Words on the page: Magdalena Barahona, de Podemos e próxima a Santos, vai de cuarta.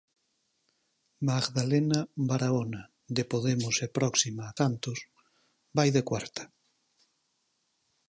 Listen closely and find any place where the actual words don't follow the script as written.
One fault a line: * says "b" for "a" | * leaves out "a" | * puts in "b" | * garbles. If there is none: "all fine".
all fine